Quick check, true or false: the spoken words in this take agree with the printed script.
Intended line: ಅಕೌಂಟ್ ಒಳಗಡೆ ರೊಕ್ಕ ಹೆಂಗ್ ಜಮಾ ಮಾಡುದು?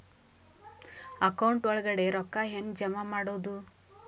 true